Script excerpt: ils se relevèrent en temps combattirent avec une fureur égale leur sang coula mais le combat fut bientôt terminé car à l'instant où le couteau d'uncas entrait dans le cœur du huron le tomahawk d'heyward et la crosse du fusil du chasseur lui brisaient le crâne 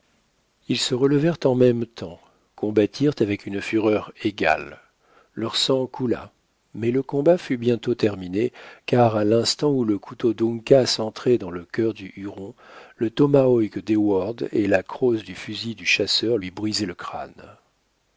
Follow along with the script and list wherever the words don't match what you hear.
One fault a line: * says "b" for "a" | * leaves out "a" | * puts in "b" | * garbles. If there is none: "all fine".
* puts in "même"